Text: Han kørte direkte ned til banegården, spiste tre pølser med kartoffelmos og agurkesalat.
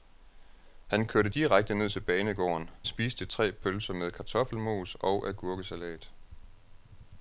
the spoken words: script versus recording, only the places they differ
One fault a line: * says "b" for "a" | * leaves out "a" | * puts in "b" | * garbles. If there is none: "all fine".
all fine